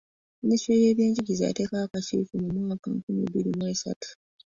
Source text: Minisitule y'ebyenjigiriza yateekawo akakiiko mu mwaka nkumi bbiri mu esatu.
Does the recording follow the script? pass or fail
pass